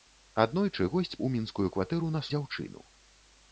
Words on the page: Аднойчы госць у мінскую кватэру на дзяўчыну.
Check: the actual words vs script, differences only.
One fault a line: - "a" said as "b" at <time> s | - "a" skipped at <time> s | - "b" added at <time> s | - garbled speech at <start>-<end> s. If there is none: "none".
none